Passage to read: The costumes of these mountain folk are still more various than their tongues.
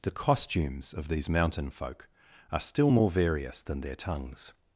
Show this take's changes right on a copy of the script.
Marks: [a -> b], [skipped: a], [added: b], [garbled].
The costumes of these mountain folk are still more various than their tongues.